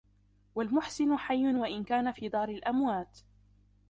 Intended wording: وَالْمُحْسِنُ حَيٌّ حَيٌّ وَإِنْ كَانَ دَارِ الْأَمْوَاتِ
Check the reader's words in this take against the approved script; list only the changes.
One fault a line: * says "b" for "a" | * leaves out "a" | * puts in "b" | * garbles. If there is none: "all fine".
* leaves out "حَيٌّ"
* puts in "فِي"